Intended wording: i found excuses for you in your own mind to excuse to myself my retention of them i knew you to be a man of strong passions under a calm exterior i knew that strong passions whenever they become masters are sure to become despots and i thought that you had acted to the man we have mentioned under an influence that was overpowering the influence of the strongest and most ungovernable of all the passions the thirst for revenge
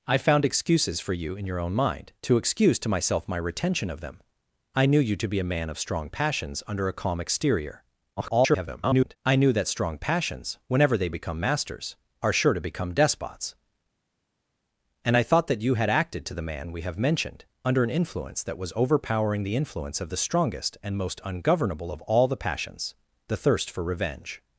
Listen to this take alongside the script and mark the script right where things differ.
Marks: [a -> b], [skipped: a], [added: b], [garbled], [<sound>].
i found excuses for you in your own mind to excuse to myself my retention of them i knew you to be a man of strong passions under a calm exterior [garbled] i knew that strong passions whenever they become masters are sure to become despots and i thought that you had acted to the man we have mentioned under an influence that was overpowering the influence of the strongest and most ungovernable of all the passions the thirst for revenge